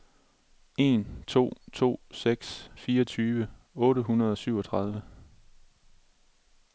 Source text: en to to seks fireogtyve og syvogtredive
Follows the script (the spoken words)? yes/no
no